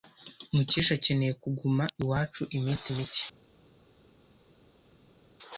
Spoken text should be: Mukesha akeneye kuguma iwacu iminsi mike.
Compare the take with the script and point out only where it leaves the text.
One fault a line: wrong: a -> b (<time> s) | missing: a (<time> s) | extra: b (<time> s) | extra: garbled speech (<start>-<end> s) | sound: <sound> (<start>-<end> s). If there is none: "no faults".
no faults